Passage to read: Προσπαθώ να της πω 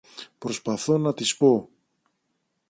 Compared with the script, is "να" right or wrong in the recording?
right